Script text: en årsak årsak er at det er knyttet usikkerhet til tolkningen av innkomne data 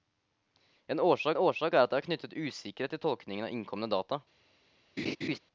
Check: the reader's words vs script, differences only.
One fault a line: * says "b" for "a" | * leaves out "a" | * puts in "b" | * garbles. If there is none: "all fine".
all fine